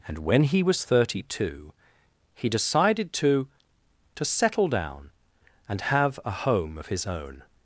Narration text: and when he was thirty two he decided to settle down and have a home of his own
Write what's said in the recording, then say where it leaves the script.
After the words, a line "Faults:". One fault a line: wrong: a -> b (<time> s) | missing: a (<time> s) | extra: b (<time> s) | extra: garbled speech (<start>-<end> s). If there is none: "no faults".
and when he was thirty two he decided to to settle down and have a home of his own
Faults:
extra: to (4.2 s)